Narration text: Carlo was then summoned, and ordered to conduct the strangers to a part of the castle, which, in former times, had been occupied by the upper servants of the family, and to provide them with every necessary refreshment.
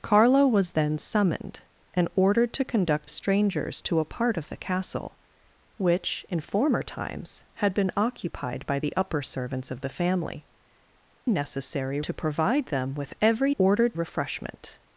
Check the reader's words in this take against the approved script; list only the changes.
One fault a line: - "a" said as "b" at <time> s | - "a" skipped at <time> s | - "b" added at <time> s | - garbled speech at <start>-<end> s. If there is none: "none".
- "the" skipped at 3.1 s
- "and" said as "necessary" at 11.3 s
- "necessary" said as "ordered" at 13.6 s